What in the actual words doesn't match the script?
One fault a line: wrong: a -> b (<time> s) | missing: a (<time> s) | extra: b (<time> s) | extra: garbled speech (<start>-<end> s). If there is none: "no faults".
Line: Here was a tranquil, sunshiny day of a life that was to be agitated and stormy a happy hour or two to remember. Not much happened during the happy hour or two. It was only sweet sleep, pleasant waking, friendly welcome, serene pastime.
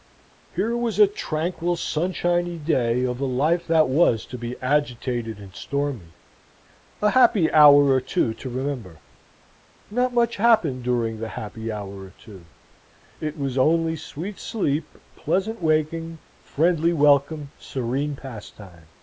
no faults